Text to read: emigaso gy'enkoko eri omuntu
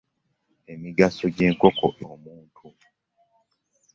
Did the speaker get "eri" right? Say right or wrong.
wrong